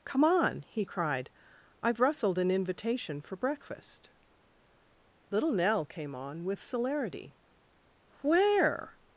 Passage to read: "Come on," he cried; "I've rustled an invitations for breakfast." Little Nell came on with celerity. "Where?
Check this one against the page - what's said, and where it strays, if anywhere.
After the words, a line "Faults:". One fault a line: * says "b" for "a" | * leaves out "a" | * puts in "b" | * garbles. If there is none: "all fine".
"Come on," he cried; "I've rustled an invitation for breakfast." Little Nell came on with celerity. "Where?
Faults:
* says "invitation" for "invitations"